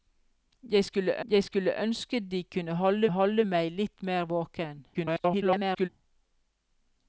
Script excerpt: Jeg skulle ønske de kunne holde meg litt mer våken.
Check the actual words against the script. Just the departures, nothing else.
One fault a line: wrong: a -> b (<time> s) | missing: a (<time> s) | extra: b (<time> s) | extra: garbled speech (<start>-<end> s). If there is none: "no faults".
extra: jeg skulle (1.3 s)
extra: holde (3.1 s)
extra: garbled speech (4.9-5.9 s)